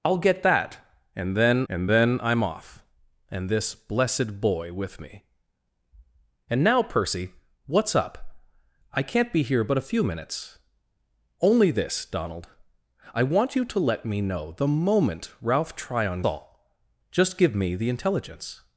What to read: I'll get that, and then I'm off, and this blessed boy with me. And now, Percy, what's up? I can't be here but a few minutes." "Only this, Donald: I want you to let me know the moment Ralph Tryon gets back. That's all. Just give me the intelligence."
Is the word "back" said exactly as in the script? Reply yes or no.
no